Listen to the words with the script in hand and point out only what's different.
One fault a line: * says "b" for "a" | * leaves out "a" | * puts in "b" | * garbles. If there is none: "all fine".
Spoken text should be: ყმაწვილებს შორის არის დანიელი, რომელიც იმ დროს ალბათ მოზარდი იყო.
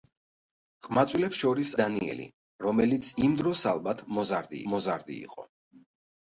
* leaves out "არის"
* puts in "მოზარდი"